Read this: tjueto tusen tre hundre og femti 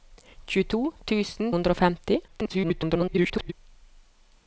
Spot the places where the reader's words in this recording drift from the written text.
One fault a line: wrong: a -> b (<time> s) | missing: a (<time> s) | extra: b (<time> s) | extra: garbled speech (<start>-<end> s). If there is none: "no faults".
missing: tre (1.5 s)
extra: garbled speech (2.3-3.5 s)